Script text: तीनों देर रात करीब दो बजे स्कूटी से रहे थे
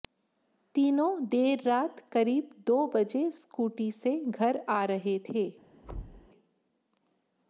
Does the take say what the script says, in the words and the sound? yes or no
no